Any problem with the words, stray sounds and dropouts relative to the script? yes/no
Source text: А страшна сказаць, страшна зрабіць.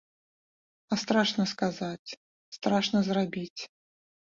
no